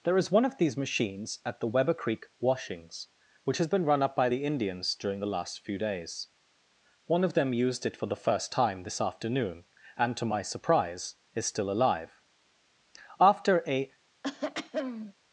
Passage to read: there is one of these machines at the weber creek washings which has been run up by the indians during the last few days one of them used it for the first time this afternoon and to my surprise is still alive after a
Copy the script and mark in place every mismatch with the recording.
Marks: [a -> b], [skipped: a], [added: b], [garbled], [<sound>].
there is one of these machines at the weber creek washings which has been run up by the indians during the last few days one of them used it for the first time this afternoon and to my surprise is still alive after a [throat clearing]